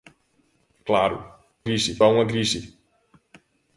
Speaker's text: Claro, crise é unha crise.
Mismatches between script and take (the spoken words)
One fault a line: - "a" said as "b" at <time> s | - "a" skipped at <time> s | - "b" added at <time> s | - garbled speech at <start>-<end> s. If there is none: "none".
none